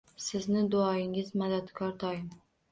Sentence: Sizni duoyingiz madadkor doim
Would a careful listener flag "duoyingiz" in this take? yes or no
no